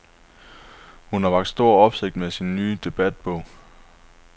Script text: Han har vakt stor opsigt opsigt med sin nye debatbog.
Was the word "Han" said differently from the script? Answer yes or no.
yes